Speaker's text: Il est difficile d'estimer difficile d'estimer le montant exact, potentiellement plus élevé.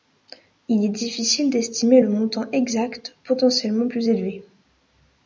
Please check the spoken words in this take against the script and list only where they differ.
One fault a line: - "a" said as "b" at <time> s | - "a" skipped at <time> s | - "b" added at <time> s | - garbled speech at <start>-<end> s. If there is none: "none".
- "difficile d'estimer" skipped at 2.0 s